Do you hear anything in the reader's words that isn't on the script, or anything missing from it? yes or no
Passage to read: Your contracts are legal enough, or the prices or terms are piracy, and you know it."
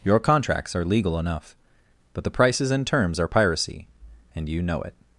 yes